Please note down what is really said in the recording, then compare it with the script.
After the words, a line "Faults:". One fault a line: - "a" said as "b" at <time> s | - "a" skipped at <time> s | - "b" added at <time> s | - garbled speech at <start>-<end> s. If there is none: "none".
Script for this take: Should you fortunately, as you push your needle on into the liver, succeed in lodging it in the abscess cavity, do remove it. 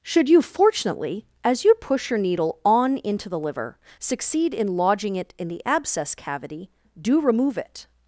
Should you fortunately, as you push your needle on into the liver, succeed in lodging it in the abscess cavity, do remove it.
Faults:
none